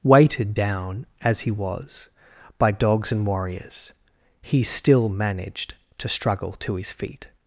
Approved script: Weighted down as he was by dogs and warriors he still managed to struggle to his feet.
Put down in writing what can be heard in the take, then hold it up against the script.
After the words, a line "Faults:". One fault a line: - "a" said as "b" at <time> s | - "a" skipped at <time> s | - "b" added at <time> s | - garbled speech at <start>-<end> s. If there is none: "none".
Weighted down as he was by dogs and warriors he still managed to struggle to his feet.
Faults:
none